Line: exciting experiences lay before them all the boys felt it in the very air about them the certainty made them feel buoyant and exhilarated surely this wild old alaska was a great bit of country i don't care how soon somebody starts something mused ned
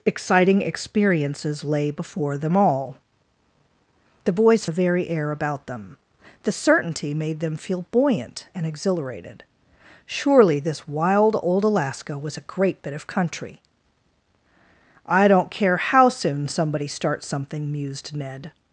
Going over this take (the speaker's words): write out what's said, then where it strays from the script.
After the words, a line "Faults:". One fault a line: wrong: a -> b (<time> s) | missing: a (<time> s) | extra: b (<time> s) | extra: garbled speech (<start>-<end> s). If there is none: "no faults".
exciting experiences lay before them all the boys the very air about them the certainty made them feel buoyant and exhilarated surely this wild old alaska was a great bit of country i don't care how soon somebody starts something mused ned
Faults:
missing: felt it in (4.7 s)